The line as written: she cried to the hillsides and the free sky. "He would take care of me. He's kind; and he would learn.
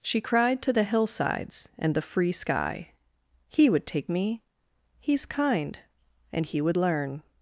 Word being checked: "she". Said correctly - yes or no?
yes